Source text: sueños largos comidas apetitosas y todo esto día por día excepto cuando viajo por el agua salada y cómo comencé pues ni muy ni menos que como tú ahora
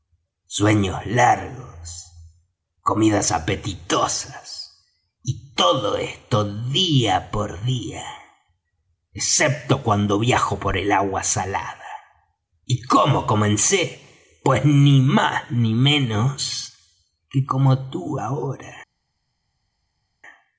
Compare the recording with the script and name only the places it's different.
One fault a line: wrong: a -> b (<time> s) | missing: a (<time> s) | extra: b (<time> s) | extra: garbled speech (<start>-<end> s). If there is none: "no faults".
wrong: muy -> más (15.0 s)